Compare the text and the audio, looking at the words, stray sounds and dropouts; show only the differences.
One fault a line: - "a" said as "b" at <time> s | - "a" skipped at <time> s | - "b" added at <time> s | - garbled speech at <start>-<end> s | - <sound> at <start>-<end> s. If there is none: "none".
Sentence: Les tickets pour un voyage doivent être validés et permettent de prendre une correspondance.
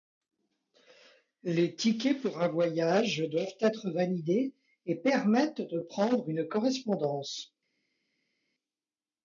none